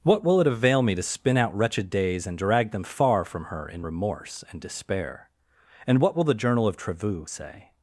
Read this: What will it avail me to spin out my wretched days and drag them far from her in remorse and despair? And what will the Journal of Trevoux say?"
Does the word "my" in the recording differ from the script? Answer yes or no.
yes